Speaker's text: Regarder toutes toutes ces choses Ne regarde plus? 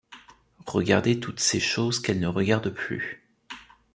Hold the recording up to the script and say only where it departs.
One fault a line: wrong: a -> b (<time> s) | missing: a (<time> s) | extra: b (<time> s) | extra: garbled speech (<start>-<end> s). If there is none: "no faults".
missing: toutes (1.4 s)
extra: Qu'elle (2.0 s)